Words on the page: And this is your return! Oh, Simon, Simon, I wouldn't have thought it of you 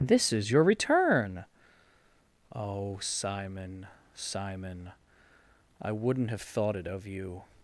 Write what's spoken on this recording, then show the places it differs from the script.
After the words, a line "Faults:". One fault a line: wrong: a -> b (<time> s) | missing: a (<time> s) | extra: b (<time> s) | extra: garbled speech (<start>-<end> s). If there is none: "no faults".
this is your return! Oh, Simon, Simon, I wouldn't have thought it of you
Faults:
missing: And (0.1 s)